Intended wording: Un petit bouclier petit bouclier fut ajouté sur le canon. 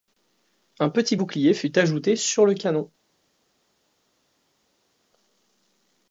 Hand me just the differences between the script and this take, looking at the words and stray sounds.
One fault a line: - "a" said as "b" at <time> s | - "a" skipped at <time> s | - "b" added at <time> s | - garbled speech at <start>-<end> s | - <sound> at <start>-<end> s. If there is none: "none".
- "petit bouclier" skipped at 1.5 s